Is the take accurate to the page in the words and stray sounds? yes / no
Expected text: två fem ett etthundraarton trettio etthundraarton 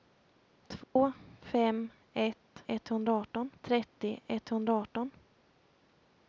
no